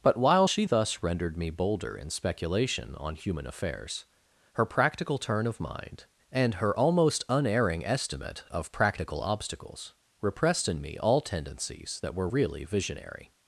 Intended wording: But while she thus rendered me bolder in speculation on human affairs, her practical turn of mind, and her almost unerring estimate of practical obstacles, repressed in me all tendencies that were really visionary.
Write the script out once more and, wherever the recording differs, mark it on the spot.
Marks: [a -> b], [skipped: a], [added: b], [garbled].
But while she thus rendered me bolder in speculation on human affairs, her practical turn of mind, and her almost unerring estimate of practical obstacles, repressed in me all tendencies that were really visionary.